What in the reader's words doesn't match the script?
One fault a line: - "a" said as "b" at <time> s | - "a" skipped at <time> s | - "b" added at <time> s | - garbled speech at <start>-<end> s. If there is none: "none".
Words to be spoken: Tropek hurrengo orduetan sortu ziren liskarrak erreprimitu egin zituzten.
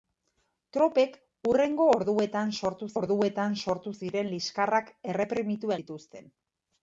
- "orduetan sortu" added at 3.0 s
- "egin" skipped at 5.7 s